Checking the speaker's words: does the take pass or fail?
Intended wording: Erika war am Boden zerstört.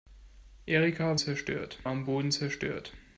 fail